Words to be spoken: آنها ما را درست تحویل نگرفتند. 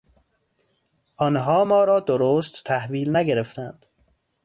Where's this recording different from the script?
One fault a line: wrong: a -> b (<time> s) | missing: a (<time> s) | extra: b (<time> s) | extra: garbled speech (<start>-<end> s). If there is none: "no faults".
no faults